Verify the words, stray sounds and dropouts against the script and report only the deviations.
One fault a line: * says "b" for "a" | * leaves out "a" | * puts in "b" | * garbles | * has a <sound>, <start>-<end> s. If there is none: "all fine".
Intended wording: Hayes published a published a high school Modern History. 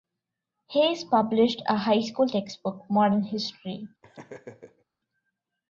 * leaves out "published a"
* puts in "textbook"
* has a laugh, 4.0-4.9 s